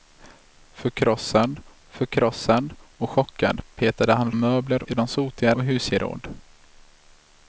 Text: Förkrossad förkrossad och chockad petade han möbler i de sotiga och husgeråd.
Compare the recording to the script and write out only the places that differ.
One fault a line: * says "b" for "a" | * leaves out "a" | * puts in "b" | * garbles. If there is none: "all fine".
all fine